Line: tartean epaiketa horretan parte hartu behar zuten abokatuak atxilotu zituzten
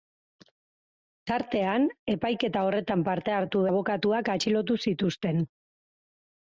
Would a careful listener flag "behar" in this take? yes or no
yes